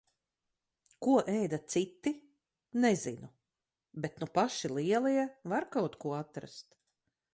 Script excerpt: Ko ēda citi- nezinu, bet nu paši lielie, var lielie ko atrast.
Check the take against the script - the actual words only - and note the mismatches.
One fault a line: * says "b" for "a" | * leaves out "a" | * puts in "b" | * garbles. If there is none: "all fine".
* says "kaut" for "lielie"